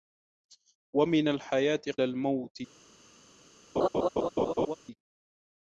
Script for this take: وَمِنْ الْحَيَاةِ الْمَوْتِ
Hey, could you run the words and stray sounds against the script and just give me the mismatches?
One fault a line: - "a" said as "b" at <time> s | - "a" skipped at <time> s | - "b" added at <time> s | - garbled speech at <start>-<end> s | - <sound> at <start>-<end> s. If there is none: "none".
- laugh at 3.8-4.8 s